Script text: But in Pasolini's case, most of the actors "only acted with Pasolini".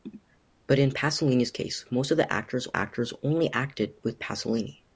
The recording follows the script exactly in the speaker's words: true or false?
false